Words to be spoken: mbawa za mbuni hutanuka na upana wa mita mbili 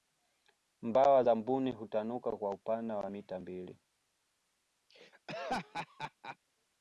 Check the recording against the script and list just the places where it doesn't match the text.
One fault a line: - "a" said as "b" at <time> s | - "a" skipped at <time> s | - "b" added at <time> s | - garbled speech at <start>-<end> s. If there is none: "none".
- "na" said as "kwa" at 2.4 s